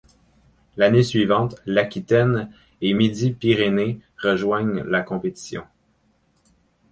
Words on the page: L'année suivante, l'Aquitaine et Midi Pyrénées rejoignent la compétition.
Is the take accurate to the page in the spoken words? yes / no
yes